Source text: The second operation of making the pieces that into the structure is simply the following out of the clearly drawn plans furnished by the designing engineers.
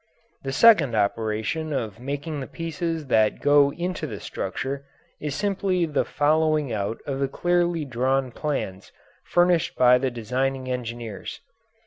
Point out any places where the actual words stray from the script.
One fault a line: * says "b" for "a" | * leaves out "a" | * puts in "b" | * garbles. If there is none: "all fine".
* puts in "go"